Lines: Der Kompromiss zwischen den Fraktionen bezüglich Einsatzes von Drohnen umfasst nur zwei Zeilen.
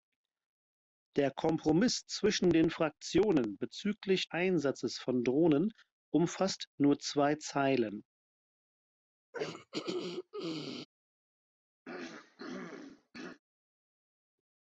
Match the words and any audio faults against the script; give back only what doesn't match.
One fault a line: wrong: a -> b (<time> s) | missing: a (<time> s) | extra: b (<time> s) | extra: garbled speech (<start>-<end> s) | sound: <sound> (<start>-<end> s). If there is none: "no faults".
sound: throat clearing (9.3-10.9 s)
sound: throat clearing (11.8-13.4 s)